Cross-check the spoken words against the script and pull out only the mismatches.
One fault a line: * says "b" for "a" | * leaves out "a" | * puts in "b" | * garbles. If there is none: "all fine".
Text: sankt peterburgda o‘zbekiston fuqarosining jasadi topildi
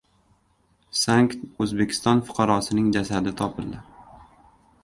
* leaves out "peterburgda"